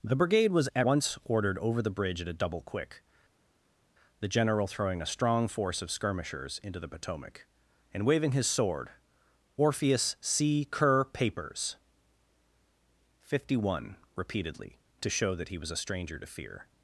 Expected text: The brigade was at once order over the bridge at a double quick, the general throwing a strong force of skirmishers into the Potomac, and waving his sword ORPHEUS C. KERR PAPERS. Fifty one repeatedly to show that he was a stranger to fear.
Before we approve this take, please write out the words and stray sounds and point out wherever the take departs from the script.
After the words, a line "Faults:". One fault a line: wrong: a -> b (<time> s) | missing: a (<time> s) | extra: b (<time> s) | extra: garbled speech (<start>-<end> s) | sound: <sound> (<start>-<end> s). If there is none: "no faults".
The brigade was at once ordered over the bridge at a double quick, the general throwing a strong force of skirmishers into the Potomac, and waving his sword ORPHEUS C. KERR PAPERS. Fifty one repeatedly to show that he was a stranger to fear.
Faults:
wrong: order -> ordered (1.2 s)